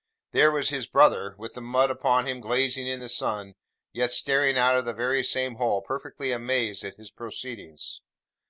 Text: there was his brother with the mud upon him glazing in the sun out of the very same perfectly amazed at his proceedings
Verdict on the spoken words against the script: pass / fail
fail